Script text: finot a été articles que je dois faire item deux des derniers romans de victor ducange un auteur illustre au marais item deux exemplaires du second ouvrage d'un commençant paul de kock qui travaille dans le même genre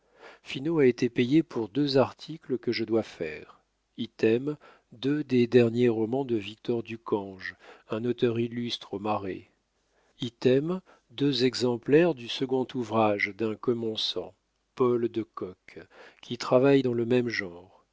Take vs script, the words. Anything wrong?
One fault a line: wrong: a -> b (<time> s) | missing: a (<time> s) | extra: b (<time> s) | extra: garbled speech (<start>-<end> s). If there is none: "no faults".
extra: payé pour deux (1.1 s)